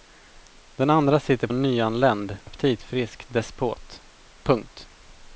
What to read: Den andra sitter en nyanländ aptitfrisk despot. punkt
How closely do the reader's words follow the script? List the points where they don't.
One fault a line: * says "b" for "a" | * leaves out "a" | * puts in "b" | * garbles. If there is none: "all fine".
all fine